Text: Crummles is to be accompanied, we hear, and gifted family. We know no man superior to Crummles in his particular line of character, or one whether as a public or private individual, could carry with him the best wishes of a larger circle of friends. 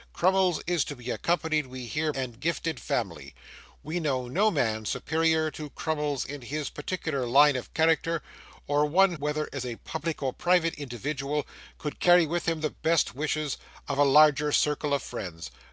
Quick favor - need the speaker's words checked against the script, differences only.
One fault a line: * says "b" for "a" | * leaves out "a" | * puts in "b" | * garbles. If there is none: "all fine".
all fine